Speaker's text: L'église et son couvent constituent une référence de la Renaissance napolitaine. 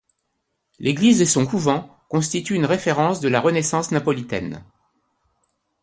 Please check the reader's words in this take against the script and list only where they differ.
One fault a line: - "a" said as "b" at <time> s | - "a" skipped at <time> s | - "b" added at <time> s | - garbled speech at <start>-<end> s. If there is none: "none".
none